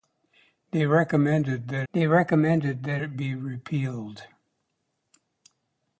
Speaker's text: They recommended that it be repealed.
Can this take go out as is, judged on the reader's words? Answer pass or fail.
fail